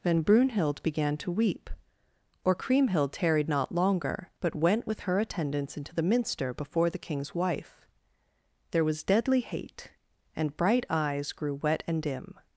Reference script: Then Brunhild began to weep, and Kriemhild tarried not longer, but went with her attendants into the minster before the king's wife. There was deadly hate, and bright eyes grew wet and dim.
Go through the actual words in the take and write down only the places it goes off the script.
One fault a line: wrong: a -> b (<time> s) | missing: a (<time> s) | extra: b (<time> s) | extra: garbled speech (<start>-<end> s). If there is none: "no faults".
wrong: and -> or (2.4 s)